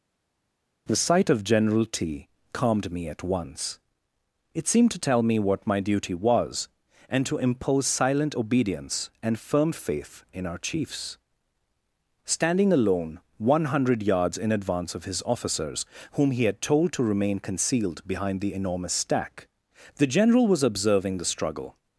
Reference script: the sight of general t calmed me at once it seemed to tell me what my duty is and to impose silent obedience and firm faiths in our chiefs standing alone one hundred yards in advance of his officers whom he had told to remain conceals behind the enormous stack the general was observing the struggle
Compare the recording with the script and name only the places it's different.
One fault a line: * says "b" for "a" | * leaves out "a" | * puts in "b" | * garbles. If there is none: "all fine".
* says "was" for "is"
* says "faith" for "faiths"
* says "concealed" for "conceals"